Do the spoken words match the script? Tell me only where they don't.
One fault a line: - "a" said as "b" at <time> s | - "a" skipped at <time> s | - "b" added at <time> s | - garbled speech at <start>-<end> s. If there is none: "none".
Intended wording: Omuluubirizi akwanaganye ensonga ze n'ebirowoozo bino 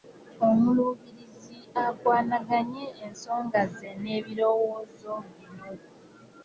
none